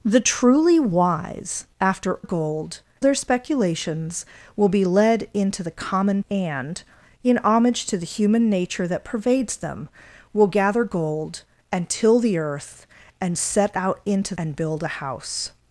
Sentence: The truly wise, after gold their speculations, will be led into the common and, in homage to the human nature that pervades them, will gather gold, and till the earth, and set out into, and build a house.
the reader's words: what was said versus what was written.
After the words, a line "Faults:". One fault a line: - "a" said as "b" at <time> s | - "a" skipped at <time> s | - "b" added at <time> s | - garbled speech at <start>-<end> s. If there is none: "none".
The truly wise, after gold their speculations, will be led into the common and, in homage to the human nature that pervades them, will gather gold, and till the earth, and set out into, and build a house.
Faults:
none